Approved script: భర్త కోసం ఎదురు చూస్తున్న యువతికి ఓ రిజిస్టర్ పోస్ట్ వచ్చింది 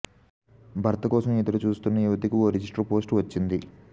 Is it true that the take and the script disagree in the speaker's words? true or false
false